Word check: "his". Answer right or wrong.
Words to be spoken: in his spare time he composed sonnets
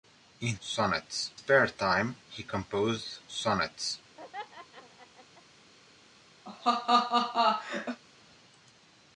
wrong